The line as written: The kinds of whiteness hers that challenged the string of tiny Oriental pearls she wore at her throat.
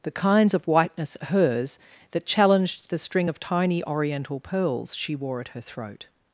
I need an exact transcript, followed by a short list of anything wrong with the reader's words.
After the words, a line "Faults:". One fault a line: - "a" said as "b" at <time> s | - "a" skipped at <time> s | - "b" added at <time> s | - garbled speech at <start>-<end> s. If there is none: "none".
The kinds of whiteness hers that challenged the string of tiny Oriental pearls she wore at her throat.
Faults:
none